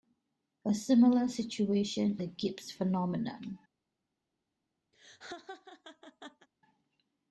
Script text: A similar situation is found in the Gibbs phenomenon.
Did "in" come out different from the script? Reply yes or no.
yes